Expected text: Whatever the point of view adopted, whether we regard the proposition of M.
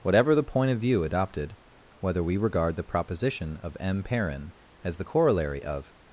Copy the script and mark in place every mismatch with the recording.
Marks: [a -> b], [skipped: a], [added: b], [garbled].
Whatever the point of view adopted, whether we regard the proposition of M. [added: Perrin as the corollary of]